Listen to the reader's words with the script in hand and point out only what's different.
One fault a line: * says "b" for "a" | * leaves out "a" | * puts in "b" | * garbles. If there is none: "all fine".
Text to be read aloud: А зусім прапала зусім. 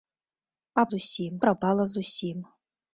all fine